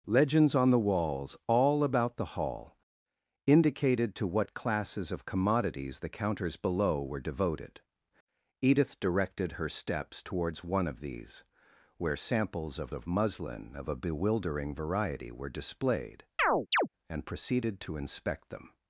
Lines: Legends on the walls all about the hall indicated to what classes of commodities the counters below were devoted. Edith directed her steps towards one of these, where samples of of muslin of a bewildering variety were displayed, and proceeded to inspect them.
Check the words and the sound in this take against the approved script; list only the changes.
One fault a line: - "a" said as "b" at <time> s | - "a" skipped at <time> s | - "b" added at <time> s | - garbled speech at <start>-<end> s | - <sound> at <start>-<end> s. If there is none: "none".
- chirp at 16.4-16.9 s